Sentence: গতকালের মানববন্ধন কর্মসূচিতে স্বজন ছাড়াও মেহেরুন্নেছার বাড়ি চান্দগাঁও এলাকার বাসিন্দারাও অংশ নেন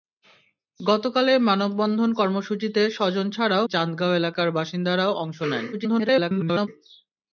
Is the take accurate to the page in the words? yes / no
no